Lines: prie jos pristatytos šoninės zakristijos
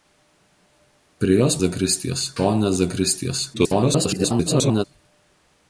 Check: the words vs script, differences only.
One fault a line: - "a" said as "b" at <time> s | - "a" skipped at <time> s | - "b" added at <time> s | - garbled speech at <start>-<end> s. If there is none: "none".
- "pristatytos" said as "zakristijos" at 1.6 s
- garbled speech at 3.5-4.8 s